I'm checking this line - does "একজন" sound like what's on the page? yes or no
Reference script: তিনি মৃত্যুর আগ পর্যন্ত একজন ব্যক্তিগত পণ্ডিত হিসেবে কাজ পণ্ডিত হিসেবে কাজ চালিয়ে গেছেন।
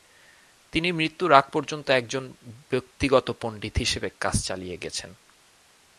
yes